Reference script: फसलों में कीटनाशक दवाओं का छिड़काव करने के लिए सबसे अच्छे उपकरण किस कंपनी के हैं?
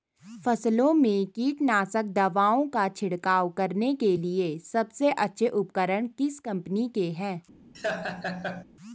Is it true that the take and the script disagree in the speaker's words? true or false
false